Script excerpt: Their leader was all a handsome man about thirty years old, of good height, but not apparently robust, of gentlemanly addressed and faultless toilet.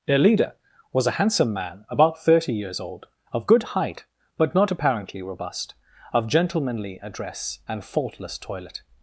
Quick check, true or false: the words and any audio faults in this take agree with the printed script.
false